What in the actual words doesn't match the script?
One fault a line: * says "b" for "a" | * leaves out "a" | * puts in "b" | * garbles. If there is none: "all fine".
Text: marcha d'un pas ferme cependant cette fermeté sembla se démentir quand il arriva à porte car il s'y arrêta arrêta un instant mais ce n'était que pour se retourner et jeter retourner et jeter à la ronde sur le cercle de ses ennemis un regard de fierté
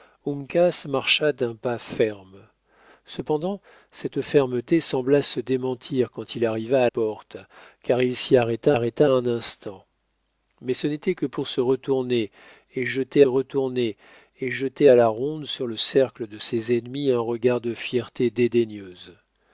all fine